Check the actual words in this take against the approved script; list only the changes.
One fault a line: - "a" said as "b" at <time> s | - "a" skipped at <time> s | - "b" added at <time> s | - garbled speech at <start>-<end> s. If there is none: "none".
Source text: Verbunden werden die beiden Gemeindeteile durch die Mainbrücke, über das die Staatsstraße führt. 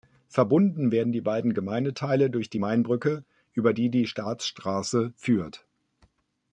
- "das" said as "die" at 3.7 s